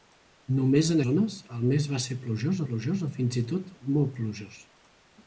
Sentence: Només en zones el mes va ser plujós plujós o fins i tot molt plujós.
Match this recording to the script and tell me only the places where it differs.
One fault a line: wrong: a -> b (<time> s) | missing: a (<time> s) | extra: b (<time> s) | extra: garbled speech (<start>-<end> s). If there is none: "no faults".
no faults